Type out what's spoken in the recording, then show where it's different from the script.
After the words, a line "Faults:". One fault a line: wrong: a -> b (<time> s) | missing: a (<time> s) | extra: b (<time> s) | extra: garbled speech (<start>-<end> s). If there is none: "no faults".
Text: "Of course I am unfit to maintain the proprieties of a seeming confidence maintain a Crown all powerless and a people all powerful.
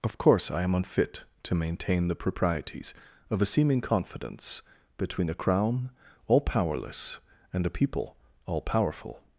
"Of course I am unfit to maintain the proprieties of a seeming confidence between a Crown all powerless and a people all powerful.
Faults:
wrong: maintain -> between (5.0 s)